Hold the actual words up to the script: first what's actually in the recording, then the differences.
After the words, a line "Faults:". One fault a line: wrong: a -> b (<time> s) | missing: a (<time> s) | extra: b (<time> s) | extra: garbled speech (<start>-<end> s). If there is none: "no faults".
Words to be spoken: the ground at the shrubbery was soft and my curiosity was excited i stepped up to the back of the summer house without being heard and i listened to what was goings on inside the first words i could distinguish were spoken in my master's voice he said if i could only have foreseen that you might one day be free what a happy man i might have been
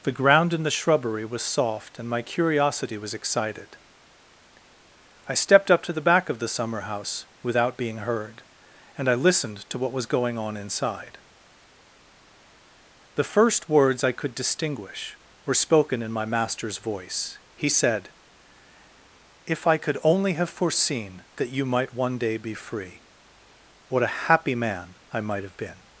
the ground in the shrubbery was soft and my curiosity was excited i stepped up to the back of the summer house without being heard and i listened to what was going on inside the first words i could distinguish were spoken in my master's voice he said if i could only have foreseen that you might one day be free what a happy man i might have been
Faults:
wrong: at -> in (0.5 s)
wrong: goings -> going (10.1 s)